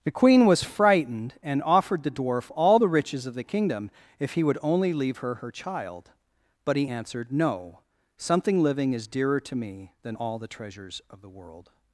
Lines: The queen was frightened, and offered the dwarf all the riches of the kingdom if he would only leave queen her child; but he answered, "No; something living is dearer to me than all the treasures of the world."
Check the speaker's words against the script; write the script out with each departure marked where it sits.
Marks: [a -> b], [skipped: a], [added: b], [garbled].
The queen was frightened, and offered the dwarf all the riches of the kingdom if he would only leave [queen -> her] her child; but he answered, "No; something living is dearer to me than all the treasures of the world."